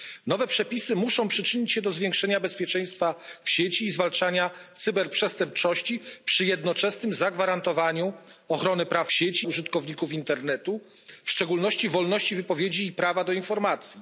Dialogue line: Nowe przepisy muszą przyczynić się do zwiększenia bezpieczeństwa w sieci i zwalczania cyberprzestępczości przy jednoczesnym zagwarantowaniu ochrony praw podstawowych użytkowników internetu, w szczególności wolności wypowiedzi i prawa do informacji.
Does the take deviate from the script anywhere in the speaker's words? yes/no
yes